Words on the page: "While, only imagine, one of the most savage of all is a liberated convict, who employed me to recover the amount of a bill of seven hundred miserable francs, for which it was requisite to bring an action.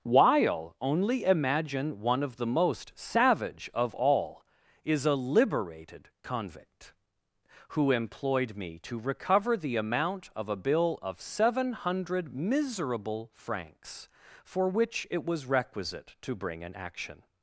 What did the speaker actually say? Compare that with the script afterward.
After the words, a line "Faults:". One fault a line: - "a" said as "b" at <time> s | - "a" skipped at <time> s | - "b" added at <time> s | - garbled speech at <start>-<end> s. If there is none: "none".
"While, only imagine, one of the most savage of all is a liberated convict, who employed me to recover the amount of a bill of seven hundred miserable francs, for which it was requisite to bring an action.
Faults:
none